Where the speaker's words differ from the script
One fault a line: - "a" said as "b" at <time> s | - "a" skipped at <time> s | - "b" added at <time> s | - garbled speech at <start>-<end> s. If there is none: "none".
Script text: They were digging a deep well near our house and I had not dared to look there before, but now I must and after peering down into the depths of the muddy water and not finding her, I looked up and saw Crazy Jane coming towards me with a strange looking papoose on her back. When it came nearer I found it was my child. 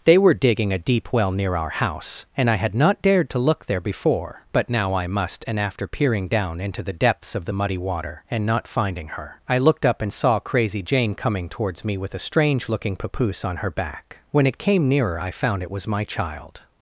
none